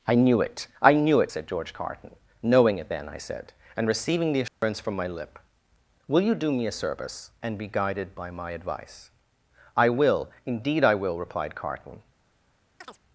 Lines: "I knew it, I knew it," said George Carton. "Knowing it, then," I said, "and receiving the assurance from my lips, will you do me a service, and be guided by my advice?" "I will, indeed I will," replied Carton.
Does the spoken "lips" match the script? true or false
false